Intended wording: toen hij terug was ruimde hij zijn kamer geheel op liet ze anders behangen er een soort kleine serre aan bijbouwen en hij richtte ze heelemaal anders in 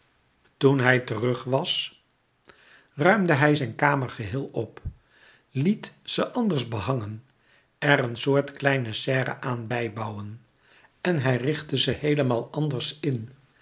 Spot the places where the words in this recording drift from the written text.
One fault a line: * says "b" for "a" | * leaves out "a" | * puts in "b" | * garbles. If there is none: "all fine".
all fine